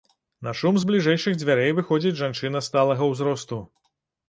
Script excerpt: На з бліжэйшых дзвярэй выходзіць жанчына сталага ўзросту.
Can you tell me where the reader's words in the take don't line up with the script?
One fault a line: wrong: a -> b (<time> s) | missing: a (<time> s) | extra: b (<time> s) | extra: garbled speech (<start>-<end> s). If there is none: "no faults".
extra: шум (0.6 s)